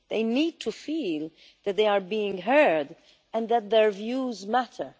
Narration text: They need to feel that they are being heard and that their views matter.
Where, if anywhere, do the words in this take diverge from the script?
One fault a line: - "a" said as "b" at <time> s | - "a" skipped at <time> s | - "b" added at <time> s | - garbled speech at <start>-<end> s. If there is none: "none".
none